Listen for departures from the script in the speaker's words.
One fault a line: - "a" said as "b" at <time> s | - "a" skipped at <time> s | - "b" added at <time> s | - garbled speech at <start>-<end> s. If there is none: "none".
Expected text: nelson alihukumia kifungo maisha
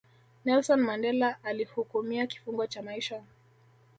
- "mandela" added at 0.8 s
- "cha" added at 2.7 s